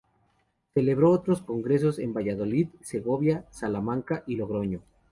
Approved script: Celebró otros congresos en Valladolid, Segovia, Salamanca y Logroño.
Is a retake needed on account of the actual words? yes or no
no